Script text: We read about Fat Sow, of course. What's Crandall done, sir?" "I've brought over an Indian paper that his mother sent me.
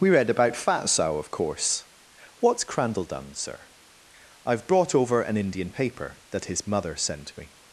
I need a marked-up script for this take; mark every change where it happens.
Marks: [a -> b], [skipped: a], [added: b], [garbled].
We read about Fat Sow, of course. What's Crandall done, sir?" "I've brought over an Indian paper that his mother sent me.